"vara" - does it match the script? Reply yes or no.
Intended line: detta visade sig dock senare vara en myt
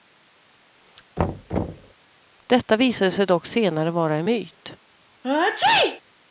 yes